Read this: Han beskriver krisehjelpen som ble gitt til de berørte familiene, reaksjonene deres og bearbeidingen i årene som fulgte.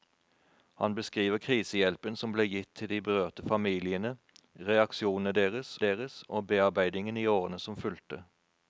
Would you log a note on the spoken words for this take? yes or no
yes